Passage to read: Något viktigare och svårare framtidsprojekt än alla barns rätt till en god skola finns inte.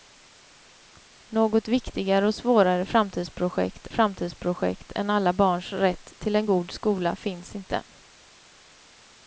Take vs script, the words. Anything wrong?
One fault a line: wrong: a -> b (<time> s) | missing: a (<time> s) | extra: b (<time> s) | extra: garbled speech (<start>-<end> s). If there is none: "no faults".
extra: framtidsprojekt (3.9 s)